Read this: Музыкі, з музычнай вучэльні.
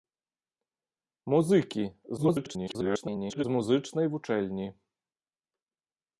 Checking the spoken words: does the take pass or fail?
fail